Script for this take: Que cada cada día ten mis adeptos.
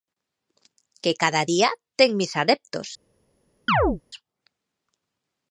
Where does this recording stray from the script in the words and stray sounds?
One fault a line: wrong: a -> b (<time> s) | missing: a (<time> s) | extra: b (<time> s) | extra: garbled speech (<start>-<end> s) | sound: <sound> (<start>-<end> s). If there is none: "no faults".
missing: cada (1.4 s)
sound: chirp (3.7-4.0 s)